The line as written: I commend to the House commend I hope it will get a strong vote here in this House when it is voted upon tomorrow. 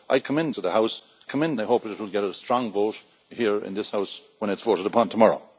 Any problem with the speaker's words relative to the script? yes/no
no